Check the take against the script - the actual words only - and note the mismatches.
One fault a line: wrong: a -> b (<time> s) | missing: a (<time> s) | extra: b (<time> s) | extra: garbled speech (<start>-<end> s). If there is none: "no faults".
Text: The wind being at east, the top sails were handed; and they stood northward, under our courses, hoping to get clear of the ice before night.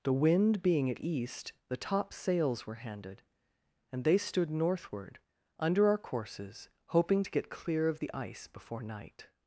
no faults